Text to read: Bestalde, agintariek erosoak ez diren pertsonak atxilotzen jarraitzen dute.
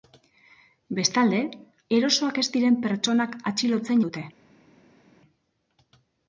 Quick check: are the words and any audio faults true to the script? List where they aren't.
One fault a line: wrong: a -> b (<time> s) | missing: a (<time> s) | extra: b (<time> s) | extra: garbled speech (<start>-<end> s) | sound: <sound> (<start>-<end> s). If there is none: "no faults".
missing: agintariek (1.4 s)
missing: jarraitzen (4.0 s)